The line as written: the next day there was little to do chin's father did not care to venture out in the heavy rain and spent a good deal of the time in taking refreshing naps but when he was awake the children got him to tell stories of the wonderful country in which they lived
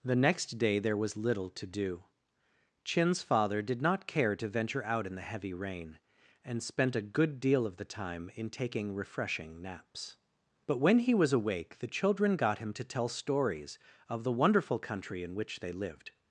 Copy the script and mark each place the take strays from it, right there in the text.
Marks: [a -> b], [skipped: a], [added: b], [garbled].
the next day there was little to do chin's father did not care to venture out in the heavy rain and spent a good deal of the time in taking refreshing naps but when he was awake the children got him to tell stories of the wonderful country in which they lived